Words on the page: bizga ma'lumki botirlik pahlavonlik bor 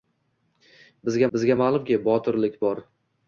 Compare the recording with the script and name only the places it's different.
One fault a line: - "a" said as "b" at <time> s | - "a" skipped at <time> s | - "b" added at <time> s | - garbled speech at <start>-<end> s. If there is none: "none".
- "bizga" added at 1.4 s
- "pahlavonlik" skipped at 2.6 s